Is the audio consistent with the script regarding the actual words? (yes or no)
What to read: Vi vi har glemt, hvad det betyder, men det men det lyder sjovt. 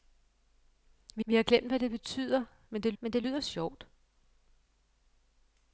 yes